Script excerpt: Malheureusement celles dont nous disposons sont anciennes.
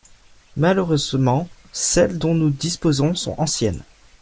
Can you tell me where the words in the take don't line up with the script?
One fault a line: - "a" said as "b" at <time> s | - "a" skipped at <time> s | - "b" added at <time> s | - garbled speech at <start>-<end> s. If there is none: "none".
none